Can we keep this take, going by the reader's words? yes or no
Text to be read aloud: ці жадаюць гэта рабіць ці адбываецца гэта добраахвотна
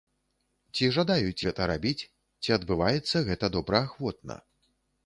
yes